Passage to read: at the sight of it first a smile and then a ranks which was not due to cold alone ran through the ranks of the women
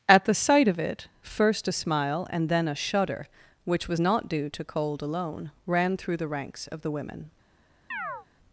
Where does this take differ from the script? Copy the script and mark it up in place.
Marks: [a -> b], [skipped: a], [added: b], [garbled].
at the sight of it first a smile and then a [ranks -> shudder] which was not due to cold alone ran through the ranks of the women